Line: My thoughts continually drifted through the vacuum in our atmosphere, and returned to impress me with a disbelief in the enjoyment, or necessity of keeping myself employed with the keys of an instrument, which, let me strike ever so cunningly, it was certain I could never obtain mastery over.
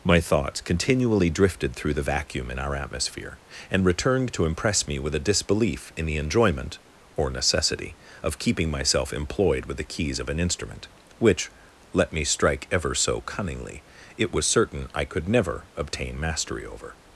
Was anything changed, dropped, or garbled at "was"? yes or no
no